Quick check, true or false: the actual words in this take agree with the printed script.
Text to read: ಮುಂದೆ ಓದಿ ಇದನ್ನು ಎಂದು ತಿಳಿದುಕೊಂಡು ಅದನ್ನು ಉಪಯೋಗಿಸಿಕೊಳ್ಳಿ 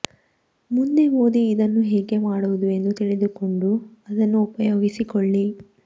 false